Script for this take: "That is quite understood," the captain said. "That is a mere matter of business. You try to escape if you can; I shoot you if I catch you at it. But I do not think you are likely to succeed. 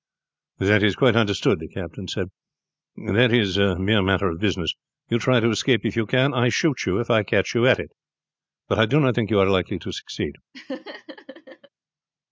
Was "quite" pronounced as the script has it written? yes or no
yes